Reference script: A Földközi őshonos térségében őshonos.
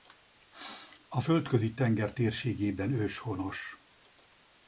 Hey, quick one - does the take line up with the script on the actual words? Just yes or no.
no